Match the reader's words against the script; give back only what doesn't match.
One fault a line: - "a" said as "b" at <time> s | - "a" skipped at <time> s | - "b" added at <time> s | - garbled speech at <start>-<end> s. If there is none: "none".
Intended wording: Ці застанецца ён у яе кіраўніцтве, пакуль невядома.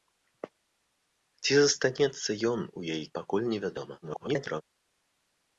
- "кіраўніцтве" skipped at 3.0 s
- garbled speech at 4.0-4.6 s